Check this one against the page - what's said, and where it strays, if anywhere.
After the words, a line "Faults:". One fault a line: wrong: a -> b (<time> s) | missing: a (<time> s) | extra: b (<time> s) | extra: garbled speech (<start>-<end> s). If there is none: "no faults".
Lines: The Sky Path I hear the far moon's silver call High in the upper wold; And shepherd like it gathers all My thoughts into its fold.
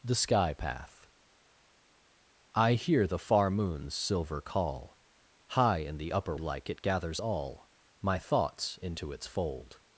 The Sky Path I hear the far moon's silver call High in the upper like it gathers all My thoughts into its fold.
Faults:
missing: wold And shepherd (6.3 s)